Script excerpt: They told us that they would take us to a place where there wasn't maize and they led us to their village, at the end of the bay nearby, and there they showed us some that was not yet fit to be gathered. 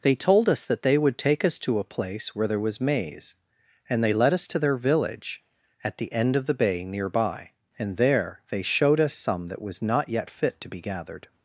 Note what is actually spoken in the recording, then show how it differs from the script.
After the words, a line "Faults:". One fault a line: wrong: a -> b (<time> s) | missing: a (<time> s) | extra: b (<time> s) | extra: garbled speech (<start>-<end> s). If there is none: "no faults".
They told us that they would take us to a place where there was maize and they led us to their village, at the end of the bay nearby, and there they showed us some that was not yet fit to be gathered.
Faults:
wrong: wasn't -> was (2.6 s)